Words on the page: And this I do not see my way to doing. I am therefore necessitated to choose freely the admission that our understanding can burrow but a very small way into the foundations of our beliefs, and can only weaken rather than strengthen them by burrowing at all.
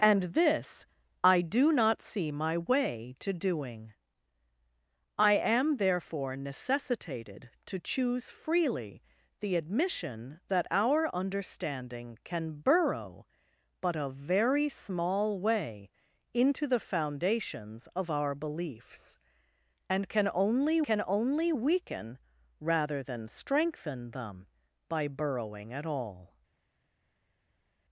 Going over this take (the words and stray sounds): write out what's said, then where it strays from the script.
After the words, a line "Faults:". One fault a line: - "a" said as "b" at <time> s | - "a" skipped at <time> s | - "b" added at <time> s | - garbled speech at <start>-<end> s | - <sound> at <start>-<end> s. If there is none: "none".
And this I do not see my way to doing. I am therefore necessitated to choose freely the admission that our understanding can burrow but a very small way into the foundations of our beliefs, and can only can only weaken rather than strengthen them by burrowing at all.
Faults:
- "can only" added at 20.8 s